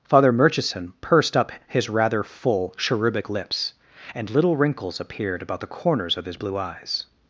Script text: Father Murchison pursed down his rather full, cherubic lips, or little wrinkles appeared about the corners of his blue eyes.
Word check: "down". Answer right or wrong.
wrong